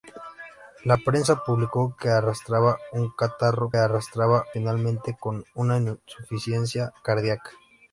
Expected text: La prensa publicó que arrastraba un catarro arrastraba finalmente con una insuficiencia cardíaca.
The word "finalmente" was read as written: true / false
true